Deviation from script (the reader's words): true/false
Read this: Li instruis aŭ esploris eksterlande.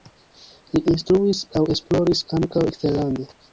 true